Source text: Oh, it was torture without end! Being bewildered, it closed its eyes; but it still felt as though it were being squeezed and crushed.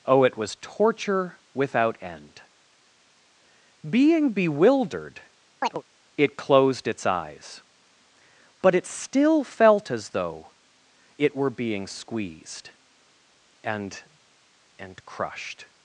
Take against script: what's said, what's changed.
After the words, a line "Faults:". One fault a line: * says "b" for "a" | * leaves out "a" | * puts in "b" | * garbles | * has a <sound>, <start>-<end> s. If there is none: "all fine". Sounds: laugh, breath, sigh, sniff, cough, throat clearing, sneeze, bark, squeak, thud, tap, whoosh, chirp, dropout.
Oh, it was torture without end! Being bewildered, it closed its eyes; but it still felt as though it were being squeezed and and crushed.
Faults:
* has a chirp, 5.6-5.8 s
* puts in "and"